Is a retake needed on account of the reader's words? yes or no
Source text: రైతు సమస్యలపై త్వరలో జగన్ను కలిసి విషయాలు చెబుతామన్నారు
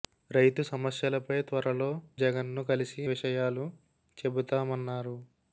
no